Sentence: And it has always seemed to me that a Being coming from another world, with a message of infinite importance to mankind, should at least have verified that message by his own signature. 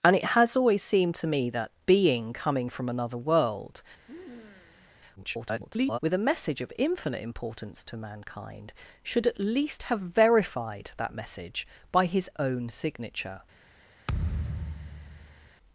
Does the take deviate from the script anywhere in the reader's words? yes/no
yes